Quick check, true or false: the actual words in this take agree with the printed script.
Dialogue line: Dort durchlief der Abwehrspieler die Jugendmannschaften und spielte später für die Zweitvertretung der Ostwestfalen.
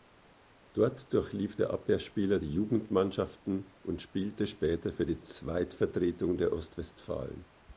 true